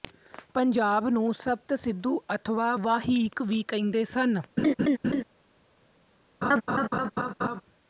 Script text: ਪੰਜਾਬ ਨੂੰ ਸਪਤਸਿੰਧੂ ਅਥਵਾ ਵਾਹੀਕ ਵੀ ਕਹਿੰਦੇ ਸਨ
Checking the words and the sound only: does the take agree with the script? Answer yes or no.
no